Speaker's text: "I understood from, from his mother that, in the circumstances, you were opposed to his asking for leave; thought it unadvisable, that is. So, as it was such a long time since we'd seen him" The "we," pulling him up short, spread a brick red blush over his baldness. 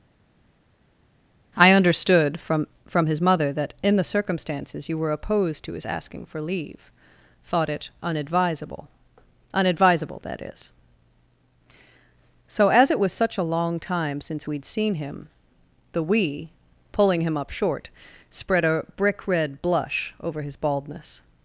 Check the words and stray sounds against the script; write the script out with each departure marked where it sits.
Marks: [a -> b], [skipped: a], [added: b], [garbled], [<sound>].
"I understood from, from his mother that, in the circumstances, you were opposed to his asking for leave; thought it unadvisable, [added: unadvisable] that is. So, as it was such a long time since we'd seen him" The "we," pulling him up short, spread a brick red blush over his baldness.